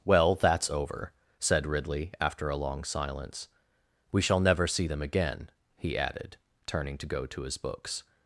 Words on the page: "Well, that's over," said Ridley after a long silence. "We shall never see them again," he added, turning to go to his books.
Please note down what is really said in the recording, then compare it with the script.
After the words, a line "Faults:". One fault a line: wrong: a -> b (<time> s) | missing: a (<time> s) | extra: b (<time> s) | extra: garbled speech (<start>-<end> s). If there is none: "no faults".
"Well, that's over," said Ridley after a long silence. "We shall never see them again," he added, turning to go to his books.
Faults:
no faults